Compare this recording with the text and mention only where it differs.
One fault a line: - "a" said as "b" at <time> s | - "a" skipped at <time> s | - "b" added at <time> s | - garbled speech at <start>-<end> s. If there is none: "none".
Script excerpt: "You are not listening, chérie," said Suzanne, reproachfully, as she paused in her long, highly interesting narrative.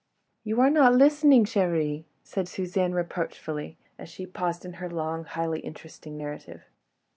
none